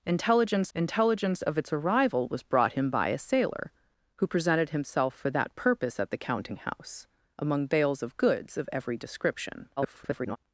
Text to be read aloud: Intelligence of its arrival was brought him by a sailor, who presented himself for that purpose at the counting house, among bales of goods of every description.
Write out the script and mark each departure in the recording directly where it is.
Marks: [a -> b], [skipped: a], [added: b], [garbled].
Intelligence [added: intelligence] of its arrival was brought him by a sailor, who presented himself for that purpose at the counting house, among bales of goods of every description. [garbled]